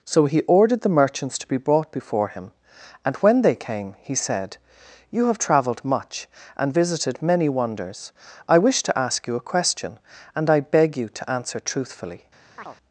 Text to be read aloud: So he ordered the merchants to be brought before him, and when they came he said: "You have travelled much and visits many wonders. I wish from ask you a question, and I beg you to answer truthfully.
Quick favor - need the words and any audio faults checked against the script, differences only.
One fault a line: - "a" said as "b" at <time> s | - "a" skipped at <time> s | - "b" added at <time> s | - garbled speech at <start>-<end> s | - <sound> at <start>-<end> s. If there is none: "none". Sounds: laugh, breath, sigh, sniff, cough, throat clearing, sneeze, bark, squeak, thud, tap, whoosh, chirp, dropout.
- "visits" said as "visited" at 6.7 s
- "from" said as "to" at 8.8 s
- chirp at 12.6-12.8 s